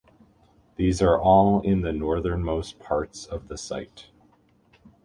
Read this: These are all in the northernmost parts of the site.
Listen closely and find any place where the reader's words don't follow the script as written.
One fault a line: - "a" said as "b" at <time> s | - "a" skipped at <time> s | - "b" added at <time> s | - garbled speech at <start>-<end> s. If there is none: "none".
none